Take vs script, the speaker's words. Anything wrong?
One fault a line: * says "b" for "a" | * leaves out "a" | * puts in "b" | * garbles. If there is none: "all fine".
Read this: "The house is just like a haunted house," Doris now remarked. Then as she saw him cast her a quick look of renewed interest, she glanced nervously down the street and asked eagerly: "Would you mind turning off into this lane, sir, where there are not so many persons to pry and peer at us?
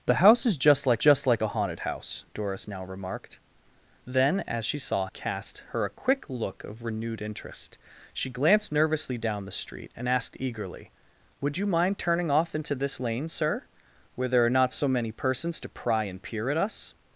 * puts in "just like"
* leaves out "him"